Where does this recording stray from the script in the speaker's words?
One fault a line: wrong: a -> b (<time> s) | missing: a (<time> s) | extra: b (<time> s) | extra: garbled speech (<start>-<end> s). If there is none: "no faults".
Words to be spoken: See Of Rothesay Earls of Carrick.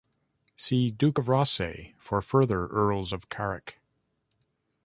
extra: Duke (0.9 s)
extra: for further (2.0 s)